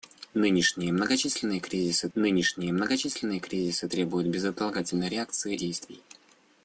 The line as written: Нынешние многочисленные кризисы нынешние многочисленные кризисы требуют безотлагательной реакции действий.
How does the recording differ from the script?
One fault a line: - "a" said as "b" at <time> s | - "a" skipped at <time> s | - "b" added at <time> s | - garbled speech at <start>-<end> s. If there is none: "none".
none